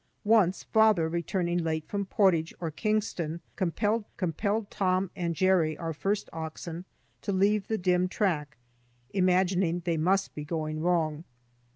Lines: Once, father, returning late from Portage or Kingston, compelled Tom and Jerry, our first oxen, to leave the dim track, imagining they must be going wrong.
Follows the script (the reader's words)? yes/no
no